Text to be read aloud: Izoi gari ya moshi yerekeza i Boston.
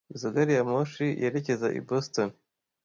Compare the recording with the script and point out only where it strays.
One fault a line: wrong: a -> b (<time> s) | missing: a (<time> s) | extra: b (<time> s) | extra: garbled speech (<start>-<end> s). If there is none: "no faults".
no faults